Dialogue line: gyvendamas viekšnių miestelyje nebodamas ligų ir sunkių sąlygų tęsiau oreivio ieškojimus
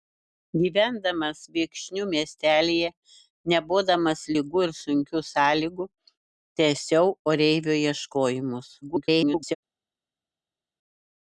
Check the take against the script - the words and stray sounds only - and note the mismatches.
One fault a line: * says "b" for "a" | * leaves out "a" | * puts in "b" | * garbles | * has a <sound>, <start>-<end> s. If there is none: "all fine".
* garbles